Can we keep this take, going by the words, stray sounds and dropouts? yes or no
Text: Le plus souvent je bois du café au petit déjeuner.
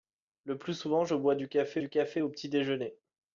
no